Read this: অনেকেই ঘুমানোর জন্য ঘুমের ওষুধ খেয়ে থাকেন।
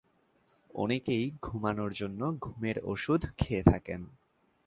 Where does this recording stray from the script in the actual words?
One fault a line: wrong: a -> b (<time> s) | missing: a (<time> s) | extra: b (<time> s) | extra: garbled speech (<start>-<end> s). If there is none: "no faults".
no faults